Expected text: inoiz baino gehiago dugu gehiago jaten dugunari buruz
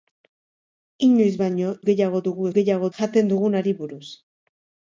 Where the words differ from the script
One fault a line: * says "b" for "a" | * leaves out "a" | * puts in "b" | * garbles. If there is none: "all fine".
all fine